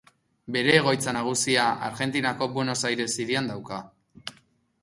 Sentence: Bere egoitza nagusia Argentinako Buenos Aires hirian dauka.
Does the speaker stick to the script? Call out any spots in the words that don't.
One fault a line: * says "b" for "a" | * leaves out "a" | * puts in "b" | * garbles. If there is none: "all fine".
all fine